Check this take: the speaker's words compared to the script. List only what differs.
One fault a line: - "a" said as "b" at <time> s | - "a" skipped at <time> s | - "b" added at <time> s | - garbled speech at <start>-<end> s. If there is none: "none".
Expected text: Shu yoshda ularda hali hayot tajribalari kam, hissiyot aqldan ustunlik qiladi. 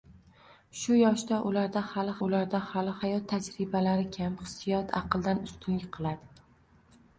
- "ularda hali" added at 2.3 s